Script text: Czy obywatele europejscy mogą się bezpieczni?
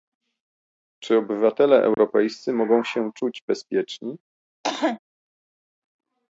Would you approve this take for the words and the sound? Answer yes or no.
no